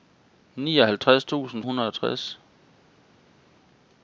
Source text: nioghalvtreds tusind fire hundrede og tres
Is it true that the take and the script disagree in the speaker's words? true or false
true